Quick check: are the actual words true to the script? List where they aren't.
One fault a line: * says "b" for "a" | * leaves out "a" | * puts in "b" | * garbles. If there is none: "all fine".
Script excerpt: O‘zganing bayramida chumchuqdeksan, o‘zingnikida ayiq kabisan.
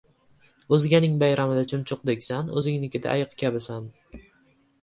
all fine